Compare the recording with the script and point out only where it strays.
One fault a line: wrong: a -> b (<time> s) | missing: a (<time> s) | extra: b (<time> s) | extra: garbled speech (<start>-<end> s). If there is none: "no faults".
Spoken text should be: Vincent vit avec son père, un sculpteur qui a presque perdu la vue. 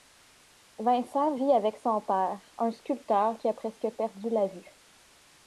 no faults